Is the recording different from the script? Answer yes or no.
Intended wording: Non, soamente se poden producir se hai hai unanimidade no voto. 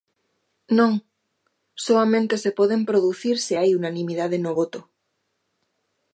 yes